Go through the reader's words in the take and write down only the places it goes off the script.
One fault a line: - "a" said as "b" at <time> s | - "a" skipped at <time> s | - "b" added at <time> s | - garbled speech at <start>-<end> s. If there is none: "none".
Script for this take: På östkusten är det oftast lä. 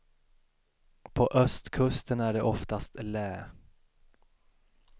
none